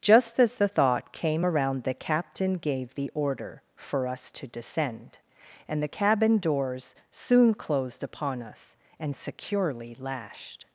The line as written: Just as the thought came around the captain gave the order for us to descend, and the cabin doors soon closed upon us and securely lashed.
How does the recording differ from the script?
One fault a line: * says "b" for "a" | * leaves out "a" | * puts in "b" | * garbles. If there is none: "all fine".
all fine